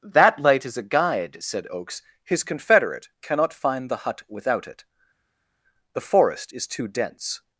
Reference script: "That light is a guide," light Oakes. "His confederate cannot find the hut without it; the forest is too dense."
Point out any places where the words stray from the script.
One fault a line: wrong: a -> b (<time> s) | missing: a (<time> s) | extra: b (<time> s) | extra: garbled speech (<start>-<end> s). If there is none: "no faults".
wrong: light -> said (1.4 s)